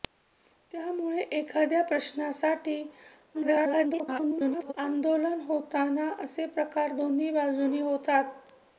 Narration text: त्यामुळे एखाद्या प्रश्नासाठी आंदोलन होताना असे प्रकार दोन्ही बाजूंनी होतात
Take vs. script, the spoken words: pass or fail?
fail